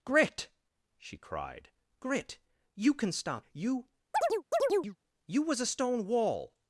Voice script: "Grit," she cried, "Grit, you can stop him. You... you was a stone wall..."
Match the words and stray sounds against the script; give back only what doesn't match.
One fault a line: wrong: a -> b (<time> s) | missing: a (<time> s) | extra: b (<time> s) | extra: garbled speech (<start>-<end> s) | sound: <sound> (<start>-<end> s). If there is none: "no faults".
missing: him (3.5 s)
sound: chirp (4.1-5.0 s)